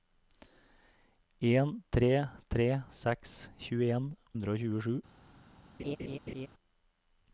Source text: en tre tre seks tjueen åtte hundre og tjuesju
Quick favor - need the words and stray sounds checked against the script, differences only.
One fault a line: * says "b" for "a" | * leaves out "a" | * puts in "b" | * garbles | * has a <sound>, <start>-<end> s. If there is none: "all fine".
* leaves out "åtte"
* has a laugh, 5.8-6.5 s